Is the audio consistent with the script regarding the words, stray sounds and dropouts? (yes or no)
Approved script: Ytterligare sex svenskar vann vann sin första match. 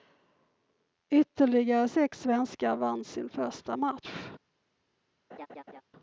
no